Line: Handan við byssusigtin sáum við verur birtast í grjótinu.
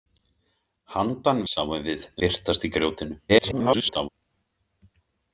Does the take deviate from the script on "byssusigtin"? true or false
true